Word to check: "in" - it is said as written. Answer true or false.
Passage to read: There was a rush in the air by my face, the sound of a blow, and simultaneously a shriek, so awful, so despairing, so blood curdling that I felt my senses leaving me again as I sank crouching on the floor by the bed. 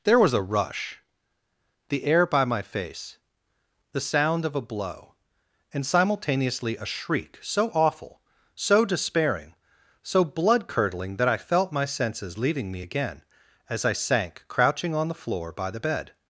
false